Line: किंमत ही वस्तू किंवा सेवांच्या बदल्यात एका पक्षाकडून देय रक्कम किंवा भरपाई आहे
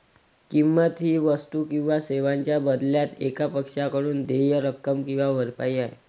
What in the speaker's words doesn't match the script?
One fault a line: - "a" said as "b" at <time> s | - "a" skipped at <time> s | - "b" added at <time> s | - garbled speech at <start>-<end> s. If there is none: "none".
none